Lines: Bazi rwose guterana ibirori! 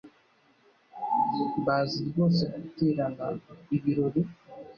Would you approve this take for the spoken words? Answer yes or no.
yes